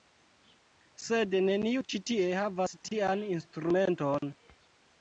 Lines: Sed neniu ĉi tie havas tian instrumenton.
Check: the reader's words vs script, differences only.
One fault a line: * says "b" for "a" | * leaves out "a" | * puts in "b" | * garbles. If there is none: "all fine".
all fine